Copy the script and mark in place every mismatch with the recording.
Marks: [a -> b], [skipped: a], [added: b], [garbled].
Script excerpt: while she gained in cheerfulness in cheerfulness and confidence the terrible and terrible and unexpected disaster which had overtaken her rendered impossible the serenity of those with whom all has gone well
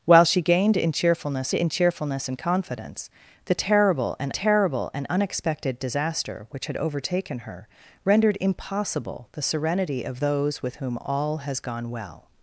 while she gained in cheerfulness in cheerfulness and confidence the terrible and terrible and unexpected disaster which had overtaken her rendered impossible the serenity of those with whom all has gone well